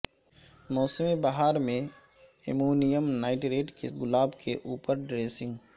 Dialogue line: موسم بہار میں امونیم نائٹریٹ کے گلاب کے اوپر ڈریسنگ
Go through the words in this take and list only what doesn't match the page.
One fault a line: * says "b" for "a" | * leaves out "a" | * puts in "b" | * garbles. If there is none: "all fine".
all fine